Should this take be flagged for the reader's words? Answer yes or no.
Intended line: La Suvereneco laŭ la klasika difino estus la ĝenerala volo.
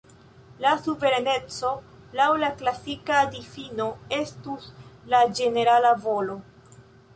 no